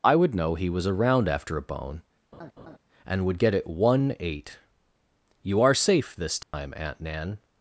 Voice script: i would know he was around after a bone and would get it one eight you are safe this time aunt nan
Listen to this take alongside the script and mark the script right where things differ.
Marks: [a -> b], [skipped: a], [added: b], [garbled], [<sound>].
i would know he was around after a bone [laugh] and would get it one eight you are safe this time [dropout] aunt nan